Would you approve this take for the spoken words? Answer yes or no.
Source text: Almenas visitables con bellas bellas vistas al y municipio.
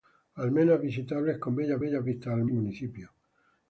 yes